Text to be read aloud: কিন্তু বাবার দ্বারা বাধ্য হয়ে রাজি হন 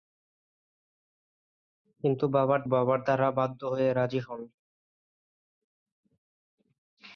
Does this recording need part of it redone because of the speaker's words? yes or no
yes